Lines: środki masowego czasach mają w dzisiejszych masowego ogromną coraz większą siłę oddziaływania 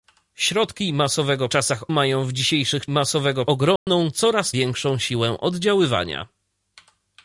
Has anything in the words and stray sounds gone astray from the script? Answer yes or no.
yes